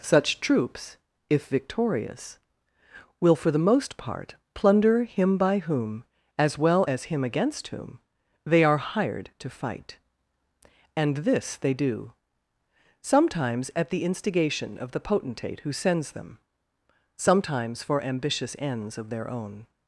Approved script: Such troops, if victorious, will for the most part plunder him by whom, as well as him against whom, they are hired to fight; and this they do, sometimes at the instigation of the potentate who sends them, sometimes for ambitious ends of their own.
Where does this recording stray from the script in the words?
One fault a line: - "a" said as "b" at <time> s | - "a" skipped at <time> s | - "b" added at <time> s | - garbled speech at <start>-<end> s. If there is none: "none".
none